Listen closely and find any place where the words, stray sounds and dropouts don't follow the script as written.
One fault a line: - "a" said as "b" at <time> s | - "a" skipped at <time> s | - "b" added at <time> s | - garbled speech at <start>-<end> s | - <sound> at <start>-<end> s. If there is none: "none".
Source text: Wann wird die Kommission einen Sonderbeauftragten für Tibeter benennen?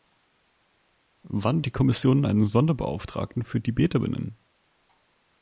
- "wird" skipped at 1.6 s